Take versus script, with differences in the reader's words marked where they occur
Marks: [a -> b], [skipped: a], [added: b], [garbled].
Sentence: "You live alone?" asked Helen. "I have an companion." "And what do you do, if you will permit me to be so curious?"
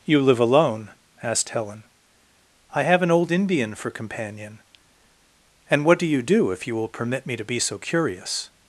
"You live alone?" asked Helen. "I have an [added: old Indian for] companion." "And what do you do, if you will permit me to be so curious?"